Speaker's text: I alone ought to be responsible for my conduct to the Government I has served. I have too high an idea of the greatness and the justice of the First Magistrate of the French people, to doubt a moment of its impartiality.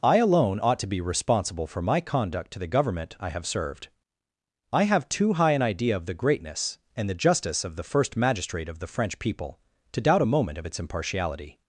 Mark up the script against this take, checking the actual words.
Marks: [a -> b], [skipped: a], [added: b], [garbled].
I alone ought to be responsible for my conduct to the Government I [has -> have] served. I have too high an idea of the greatness and the justice of the First Magistrate of the French people, to doubt a moment of its impartiality.